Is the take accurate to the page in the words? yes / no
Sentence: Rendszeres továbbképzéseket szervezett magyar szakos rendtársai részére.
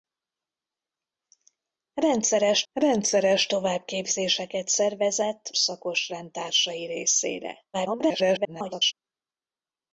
no